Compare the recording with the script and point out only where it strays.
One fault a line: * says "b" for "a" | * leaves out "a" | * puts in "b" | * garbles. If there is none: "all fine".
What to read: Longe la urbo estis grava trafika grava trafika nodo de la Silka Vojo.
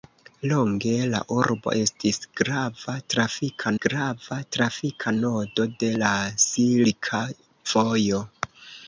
all fine